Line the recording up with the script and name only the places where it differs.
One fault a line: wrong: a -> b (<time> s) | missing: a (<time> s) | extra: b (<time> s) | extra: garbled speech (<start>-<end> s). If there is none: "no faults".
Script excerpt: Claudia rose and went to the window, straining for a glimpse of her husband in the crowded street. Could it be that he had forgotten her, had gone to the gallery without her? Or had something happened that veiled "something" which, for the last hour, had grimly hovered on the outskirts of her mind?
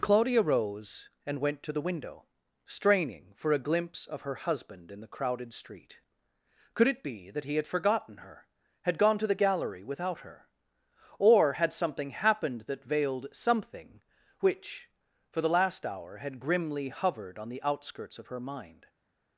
no faults